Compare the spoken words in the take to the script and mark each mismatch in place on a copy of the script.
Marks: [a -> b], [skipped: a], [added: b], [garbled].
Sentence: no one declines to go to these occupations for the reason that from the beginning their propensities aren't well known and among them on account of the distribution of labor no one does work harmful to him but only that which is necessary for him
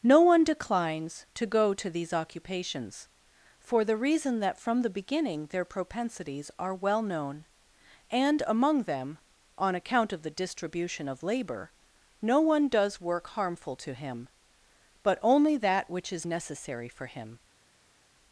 no one declines to go to these occupations for the reason that from the beginning their propensities [aren't -> are] well known and among them on account of the distribution of labor no one does work harmful to him but only that which is necessary for him